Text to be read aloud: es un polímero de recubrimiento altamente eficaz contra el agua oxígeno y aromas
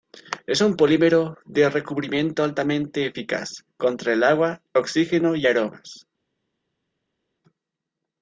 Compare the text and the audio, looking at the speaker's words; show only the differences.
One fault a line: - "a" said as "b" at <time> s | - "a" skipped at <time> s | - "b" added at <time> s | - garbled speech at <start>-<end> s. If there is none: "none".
none